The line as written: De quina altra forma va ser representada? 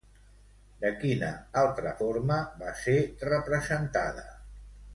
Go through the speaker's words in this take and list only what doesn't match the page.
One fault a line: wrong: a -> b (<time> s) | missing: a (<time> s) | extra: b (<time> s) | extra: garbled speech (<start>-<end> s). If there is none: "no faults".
no faults